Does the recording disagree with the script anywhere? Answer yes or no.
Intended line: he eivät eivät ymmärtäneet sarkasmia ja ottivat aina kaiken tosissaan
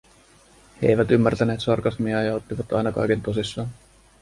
yes